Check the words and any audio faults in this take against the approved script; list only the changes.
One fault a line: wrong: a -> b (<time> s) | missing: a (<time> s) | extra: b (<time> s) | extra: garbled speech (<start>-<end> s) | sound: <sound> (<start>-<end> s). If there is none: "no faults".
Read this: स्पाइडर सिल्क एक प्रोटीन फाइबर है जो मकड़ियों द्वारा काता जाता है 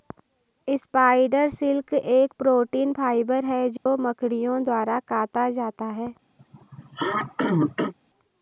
sound: dropout (3.8-3.9 s)
sound: throat clearing (6.4-7.9 s)